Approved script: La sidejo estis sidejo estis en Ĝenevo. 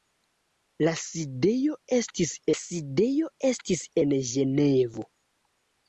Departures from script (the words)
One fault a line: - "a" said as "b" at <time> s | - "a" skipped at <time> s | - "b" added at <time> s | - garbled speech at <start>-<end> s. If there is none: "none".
none